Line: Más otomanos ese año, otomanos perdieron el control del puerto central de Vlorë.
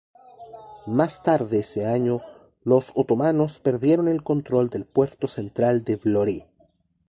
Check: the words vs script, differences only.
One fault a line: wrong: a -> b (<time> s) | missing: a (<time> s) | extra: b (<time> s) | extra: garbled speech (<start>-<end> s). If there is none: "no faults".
wrong: otomanos -> tarde (1.2 s)
extra: los (2.6 s)